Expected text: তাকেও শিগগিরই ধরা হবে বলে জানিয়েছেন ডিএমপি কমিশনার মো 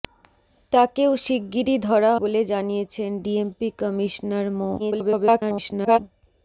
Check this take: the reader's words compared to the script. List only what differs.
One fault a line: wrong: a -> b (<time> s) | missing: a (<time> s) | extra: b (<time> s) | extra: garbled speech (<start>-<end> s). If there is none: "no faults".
missing: হবে (2.1 s)
extra: garbled speech (4.8-6.0 s)